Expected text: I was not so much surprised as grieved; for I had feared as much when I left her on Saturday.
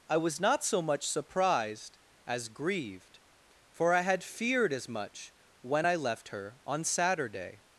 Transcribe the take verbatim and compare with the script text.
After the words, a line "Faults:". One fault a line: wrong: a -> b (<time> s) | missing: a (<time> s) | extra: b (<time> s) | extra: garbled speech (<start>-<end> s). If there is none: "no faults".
I was not so much surprised as grieved; for I had feared as much when I left her on Saturday.
Faults:
no faults